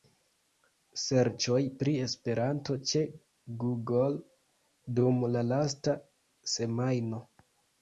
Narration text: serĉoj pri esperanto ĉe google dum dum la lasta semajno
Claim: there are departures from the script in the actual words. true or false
true